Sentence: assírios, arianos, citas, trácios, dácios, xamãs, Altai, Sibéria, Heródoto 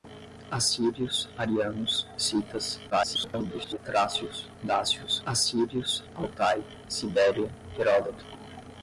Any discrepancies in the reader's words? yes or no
yes